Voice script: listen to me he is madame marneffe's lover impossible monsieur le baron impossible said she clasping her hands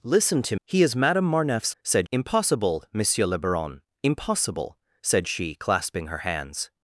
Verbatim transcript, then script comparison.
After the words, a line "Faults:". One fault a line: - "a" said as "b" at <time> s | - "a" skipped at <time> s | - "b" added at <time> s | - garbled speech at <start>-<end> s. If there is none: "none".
listen to he is madame marneffe's said impossible monsieur le baron impossible said she clasping her hands
Faults:
- "me" skipped at 0.6 s
- "lover" said as "said" at 1.8 s